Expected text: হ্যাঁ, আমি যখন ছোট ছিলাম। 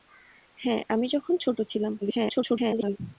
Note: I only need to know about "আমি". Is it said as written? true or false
true